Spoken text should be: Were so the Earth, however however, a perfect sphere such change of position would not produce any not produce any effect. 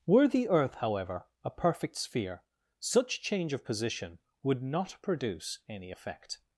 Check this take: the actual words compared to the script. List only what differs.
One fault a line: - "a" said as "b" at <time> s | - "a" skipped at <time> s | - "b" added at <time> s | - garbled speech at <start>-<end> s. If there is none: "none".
- "so" skipped at 0.3 s
- "however" skipped at 1.3 s
- "not produce any" skipped at 5.9 s